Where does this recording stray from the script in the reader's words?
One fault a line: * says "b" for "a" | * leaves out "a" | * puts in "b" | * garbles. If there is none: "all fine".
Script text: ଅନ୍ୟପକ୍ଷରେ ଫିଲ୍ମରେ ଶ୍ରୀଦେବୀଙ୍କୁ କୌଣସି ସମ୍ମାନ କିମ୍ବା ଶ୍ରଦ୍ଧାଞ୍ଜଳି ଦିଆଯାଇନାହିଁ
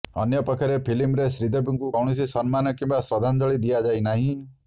all fine